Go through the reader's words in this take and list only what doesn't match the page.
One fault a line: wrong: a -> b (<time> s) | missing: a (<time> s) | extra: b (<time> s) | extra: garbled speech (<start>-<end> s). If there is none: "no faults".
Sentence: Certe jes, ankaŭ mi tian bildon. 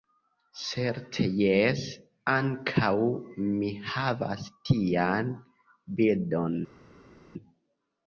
extra: havas (3.9 s)